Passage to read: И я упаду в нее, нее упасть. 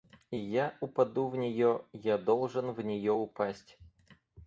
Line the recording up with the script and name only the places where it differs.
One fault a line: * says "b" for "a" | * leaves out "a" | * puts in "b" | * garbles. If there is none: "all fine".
* puts in "я должен в"